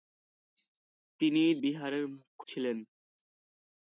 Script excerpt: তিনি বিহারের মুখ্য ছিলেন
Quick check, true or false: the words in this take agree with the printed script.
true